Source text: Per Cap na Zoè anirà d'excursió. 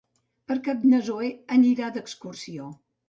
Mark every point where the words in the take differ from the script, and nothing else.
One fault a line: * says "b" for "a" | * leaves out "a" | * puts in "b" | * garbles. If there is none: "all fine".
all fine